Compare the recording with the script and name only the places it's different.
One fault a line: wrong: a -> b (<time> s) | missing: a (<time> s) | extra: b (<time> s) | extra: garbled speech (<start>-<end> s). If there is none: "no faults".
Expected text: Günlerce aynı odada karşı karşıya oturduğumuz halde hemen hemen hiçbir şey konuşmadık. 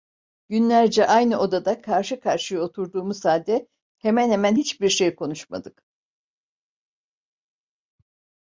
no faults